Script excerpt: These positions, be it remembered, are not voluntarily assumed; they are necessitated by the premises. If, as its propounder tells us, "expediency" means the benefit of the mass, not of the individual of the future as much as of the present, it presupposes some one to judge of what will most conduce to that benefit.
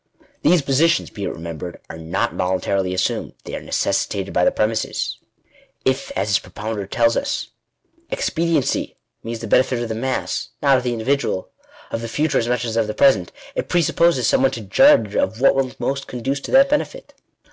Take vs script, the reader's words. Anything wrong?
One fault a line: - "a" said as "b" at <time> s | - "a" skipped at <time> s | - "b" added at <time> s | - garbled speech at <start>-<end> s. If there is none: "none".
none